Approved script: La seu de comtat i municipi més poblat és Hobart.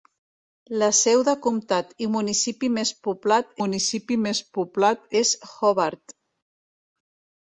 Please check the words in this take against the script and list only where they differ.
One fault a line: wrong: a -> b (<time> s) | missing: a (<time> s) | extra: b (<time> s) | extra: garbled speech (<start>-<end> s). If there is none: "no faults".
extra: municipi més poblat (3.6 s)